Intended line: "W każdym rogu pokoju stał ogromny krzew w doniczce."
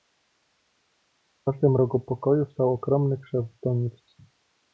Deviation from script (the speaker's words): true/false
false